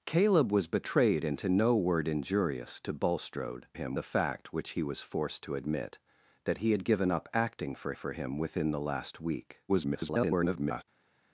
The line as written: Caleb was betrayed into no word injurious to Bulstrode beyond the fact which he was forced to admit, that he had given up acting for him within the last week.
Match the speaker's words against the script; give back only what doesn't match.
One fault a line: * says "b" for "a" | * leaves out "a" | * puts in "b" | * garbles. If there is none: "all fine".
* says "him" for "beyond"
* puts in "for"
* garbles